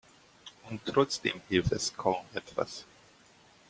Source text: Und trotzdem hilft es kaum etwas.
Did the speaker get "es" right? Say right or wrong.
right